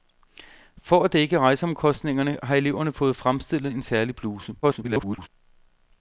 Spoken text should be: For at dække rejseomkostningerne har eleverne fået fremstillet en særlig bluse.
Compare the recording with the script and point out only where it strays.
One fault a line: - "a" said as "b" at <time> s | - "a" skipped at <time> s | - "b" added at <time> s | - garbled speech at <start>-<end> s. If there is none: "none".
- garbled speech at 4.6-5.3 s